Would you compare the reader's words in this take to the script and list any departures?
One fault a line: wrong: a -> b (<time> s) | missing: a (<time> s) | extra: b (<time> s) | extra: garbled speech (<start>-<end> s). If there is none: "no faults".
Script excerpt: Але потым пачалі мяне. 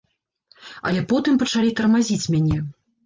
extra: тармазіць (1.8 s)